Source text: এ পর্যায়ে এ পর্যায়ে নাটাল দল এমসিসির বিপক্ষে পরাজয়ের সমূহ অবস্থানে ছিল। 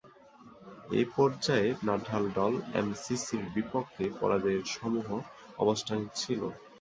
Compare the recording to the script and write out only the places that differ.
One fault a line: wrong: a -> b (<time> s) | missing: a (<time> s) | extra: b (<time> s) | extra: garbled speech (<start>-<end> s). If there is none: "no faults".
missing: এ পর্যায়ে (1.7 s)